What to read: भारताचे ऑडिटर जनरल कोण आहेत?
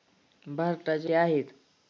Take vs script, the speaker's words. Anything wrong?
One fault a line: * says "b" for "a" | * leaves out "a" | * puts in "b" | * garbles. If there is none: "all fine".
* leaves out "ऑडिटर जनरल कोण"